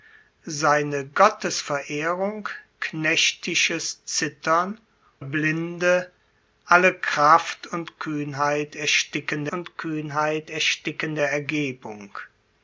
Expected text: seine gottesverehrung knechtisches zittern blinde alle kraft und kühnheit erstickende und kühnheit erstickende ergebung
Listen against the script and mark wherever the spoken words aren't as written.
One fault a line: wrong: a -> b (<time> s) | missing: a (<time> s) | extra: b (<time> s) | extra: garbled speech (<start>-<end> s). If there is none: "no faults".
no faults